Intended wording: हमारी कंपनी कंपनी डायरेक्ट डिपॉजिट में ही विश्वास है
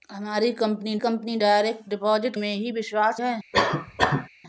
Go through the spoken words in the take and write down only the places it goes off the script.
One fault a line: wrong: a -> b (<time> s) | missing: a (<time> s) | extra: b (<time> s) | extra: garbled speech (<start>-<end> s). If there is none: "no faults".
no faults